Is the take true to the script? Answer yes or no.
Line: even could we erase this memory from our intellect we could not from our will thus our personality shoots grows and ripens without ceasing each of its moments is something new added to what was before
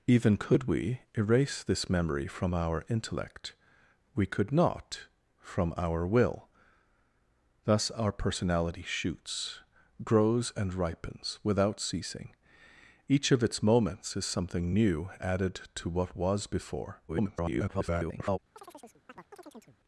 no